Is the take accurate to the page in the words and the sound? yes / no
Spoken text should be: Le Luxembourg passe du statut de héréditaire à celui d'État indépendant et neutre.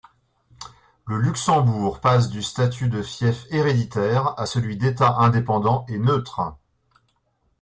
no